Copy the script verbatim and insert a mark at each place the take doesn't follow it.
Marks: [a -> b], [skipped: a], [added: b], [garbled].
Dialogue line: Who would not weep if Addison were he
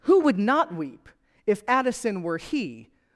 Who would not weep if Addison were he